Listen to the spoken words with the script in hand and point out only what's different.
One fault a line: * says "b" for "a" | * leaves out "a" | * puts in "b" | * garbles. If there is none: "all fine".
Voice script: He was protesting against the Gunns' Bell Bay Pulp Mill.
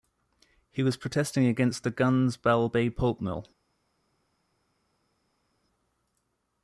all fine